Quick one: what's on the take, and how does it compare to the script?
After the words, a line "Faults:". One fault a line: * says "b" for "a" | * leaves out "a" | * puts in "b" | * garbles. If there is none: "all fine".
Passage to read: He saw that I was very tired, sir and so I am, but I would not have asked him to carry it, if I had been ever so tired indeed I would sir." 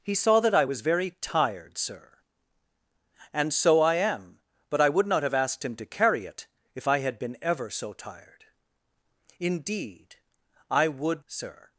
He saw that I was very tired, sir and so I am, but I would not have asked him to carry it, if I had been ever so tired indeed I would sir."
Faults:
all fine